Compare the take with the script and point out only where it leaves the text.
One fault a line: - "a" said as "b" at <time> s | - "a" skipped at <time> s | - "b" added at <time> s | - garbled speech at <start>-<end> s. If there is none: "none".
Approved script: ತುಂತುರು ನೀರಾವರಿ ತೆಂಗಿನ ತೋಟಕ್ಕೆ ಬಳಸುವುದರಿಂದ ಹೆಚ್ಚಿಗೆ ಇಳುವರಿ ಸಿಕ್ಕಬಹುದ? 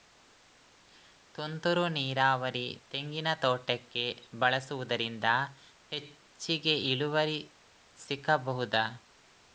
none